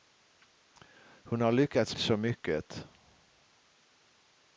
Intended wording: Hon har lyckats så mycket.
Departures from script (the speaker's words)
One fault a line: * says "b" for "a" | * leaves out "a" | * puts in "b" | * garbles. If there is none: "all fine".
all fine